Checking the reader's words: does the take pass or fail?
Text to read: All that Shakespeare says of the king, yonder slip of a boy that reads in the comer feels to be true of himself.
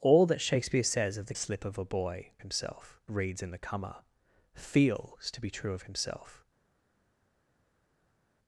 fail